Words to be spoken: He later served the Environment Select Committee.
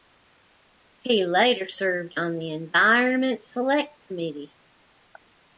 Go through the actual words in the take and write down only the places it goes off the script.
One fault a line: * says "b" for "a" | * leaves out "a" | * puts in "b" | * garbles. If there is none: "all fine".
* puts in "on"